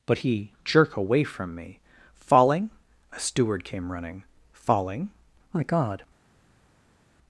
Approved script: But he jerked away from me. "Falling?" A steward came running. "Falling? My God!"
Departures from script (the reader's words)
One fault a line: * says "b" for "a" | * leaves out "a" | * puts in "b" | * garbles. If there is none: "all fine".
* says "jerk" for "jerked"